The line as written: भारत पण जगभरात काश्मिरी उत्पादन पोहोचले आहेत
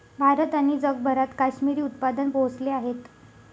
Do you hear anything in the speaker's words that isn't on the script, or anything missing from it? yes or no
yes